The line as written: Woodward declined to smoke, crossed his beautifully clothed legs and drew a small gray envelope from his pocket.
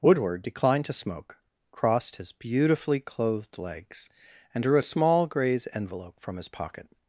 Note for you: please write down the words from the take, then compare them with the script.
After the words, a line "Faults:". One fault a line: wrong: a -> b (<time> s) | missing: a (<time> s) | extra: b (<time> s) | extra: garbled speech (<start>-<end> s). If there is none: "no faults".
Woodward declined to smoke, crossed his beautifully clothed legs and drew a small grays envelope from his pocket.
Faults:
wrong: gray -> grays (5.3 s)